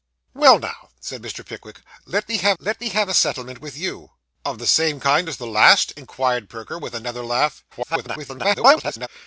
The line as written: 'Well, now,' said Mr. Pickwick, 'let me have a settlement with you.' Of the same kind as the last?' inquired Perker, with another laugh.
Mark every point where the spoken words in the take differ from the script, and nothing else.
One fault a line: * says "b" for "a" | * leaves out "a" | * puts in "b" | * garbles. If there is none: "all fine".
* puts in "let me have"
* garbles